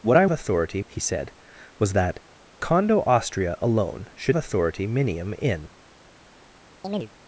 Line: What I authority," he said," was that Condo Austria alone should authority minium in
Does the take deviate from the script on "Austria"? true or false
false